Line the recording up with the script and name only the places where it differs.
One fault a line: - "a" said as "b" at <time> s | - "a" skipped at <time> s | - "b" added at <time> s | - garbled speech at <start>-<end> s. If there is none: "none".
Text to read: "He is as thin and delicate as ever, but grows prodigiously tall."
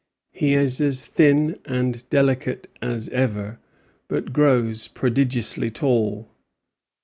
none